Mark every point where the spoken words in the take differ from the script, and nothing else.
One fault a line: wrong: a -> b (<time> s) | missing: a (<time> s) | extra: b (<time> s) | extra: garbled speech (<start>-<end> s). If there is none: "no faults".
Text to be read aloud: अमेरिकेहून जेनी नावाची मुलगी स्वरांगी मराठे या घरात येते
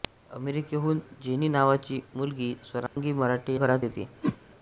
missing: या (3.5 s)